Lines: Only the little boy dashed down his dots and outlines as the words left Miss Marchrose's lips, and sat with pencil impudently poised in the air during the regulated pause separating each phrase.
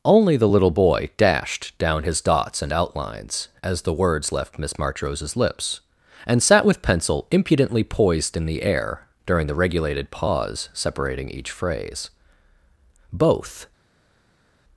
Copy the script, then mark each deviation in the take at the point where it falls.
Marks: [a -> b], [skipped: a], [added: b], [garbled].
Only the little boy dashed down his dots and outlines as the words left Miss Marchrose's lips, and sat with pencil impudently poised in the air during the regulated pause separating each phrase. [added: Both]